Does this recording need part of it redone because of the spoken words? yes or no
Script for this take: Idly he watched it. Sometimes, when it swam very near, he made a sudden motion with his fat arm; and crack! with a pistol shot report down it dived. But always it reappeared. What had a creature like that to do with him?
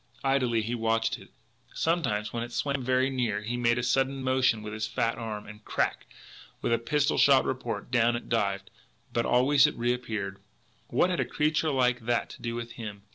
no